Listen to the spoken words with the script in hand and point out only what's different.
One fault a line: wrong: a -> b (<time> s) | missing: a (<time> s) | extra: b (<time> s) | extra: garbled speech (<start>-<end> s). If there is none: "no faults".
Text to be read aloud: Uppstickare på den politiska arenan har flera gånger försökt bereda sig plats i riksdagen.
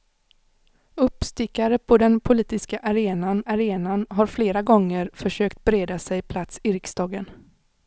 extra: arenan (3.4 s)